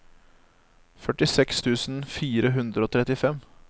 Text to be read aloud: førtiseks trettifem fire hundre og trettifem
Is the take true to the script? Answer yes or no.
no